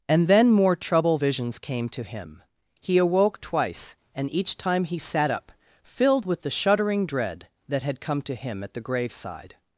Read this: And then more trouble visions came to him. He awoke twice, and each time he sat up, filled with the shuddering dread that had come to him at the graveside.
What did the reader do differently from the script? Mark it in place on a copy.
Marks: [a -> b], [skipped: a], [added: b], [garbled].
And then more trouble visions came to him. He awoke twice, and each time he sat up, filled with the shuddering dread that had come to him at the graveside.